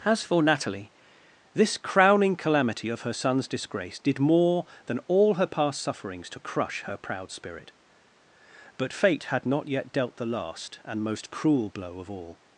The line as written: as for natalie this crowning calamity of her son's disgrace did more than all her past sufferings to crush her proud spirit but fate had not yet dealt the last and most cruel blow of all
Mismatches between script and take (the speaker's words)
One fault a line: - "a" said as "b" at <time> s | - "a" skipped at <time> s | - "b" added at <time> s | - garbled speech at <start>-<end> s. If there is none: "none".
none